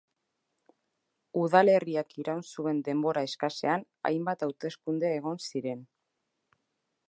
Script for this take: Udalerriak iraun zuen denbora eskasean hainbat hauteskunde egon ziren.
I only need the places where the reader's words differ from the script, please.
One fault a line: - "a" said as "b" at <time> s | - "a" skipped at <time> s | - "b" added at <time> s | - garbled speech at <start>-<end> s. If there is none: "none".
none